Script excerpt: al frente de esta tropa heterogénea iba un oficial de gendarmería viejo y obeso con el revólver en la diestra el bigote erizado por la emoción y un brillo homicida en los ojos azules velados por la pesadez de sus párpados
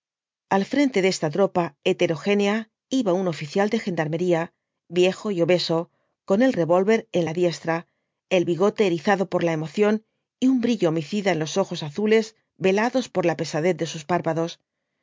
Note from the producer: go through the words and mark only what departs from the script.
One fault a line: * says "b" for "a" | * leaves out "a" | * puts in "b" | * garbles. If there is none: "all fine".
all fine